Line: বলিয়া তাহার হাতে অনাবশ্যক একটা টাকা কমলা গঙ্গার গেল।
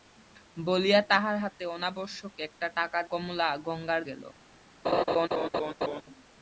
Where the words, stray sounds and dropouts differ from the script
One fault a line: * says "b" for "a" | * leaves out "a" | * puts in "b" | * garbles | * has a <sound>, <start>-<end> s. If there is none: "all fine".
* has a laugh, 4.8-6.0 s